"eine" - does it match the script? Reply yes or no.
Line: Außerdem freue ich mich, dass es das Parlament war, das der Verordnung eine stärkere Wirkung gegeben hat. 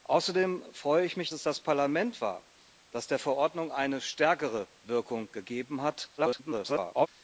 yes